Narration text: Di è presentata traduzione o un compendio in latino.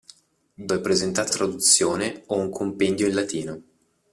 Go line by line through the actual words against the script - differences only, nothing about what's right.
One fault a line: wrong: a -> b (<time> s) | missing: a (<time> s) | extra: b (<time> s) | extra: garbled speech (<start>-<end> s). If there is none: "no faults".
no faults